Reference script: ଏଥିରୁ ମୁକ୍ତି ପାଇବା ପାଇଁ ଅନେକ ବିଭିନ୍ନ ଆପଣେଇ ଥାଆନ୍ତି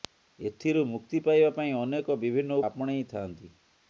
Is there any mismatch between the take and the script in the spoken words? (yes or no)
no